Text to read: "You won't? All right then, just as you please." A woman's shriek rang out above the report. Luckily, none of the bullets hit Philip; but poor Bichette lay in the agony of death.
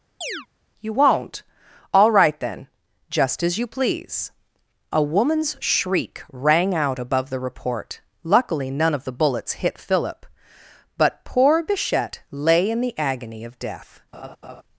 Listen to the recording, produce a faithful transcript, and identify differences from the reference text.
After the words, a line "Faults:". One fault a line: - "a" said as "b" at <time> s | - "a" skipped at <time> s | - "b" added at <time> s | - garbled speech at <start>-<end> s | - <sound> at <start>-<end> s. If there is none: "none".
"You won't? All right then, just as you please." A woman's shriek rang out above the report. Luckily, none of the bullets hit Philip; but poor Bichette lay in the agony of death.
Faults:
- chirp at 0.2-0.5 s
- laugh at 14.1-14.6 s